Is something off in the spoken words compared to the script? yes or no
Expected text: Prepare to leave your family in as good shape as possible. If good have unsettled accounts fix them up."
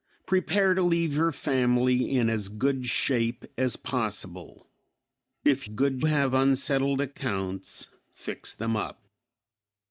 no